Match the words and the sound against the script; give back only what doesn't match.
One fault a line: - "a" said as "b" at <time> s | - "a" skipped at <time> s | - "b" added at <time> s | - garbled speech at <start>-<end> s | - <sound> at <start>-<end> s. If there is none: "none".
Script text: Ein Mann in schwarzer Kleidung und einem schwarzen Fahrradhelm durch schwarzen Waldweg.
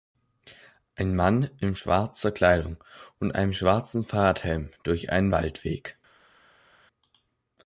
- "schwarzen" said as "einen" at 5.1 s